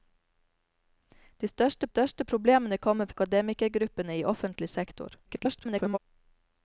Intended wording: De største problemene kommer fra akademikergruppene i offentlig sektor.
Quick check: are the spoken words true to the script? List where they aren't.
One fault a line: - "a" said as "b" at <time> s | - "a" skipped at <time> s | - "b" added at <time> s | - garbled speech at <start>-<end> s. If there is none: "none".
- "største" added at 1.9 s
- "fra" skipped at 3.1 s
- garbled speech at 5.3-6.0 s